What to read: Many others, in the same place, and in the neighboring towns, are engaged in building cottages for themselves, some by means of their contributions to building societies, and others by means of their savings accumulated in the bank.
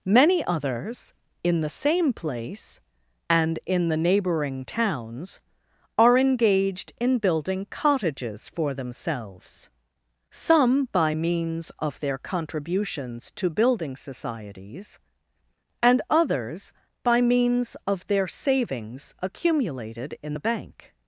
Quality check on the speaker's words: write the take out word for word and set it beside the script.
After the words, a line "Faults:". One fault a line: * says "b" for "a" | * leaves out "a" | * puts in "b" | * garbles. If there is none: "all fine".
Many others, in the same place, and in the neighboring towns, are engaged in building cottages for themselves, some by means of their contributions to building societies, and others by means of their savings accumulated in the bank.
Faults:
all fine